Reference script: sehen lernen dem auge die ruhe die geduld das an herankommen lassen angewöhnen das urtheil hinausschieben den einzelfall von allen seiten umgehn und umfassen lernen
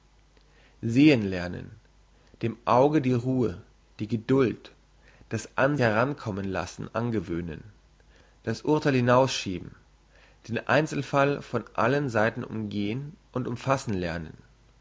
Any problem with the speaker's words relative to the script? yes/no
no